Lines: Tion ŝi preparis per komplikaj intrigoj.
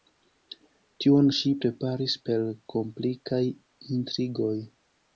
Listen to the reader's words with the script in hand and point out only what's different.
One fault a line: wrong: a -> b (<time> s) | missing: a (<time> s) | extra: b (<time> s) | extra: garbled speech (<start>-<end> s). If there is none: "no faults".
no faults